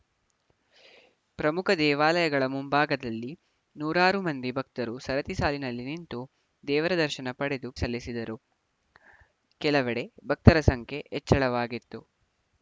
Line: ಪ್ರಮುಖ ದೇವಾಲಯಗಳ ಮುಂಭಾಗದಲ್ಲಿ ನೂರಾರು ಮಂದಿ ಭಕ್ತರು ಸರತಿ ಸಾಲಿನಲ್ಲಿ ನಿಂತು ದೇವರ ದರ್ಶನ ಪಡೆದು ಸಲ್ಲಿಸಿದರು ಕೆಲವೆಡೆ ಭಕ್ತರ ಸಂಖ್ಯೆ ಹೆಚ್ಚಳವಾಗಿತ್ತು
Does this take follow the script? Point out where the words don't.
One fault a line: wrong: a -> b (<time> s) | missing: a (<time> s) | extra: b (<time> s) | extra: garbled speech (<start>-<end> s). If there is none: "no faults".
no faults